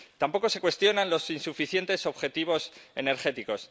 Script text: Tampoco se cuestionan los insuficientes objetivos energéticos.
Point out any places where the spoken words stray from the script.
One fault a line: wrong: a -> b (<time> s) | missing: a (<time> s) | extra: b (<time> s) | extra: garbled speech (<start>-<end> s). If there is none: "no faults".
no faults